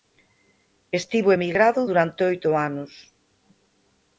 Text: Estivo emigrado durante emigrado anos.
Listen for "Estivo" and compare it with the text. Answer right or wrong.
right